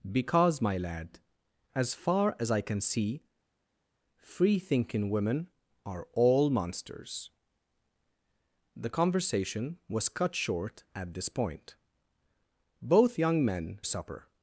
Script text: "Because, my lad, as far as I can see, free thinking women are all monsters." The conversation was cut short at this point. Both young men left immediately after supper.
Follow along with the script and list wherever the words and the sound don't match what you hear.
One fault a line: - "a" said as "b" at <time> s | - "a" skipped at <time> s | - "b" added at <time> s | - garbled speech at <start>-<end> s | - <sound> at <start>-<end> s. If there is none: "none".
- "left immediately after" skipped at 13.8 s